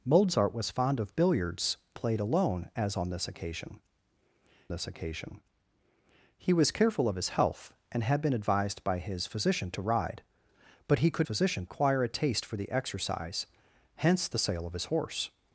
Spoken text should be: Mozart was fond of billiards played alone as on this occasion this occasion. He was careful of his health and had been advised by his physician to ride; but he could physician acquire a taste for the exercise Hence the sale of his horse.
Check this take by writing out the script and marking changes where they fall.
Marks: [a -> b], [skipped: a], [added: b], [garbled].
Mozart was fond of billiards played alone as on this occasion this occasion. He was careful of his health and had been advised by his physician to ride; but he could physician acquire a taste for the exercise Hence the sale of his horse.